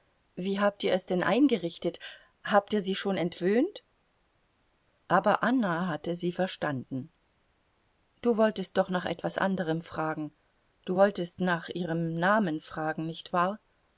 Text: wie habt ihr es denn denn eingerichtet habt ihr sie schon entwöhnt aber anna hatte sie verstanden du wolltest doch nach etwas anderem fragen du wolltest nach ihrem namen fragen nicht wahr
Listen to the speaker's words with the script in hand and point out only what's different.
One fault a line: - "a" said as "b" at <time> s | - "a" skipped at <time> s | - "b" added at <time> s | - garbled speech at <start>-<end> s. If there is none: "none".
- "denn" skipped at 1.2 s